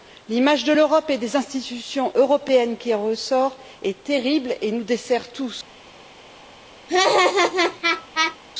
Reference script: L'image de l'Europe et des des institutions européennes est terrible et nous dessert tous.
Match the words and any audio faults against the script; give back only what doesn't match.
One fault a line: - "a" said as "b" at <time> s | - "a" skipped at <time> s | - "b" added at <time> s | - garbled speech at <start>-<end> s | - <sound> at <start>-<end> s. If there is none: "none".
- "des" skipped at 1.4 s
- "qui en ressort" added at 2.8 s
- laugh at 6.9-8.4 s